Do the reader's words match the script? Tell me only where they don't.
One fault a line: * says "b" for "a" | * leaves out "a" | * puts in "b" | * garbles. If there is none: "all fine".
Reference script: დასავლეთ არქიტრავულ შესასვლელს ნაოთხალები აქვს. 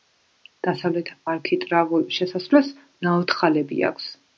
all fine